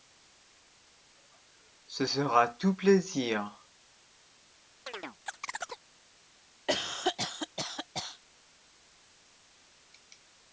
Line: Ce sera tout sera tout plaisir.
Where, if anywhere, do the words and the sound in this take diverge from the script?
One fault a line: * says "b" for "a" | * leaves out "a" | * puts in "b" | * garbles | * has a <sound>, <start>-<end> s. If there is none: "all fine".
* leaves out "sera tout"
* has a chirp, 4.9-5.8 s
* has a cough, 6.7-8.2 s